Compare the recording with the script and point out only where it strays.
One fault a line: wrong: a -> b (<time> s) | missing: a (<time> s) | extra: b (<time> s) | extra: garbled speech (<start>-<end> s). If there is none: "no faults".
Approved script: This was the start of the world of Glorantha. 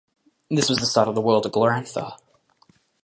no faults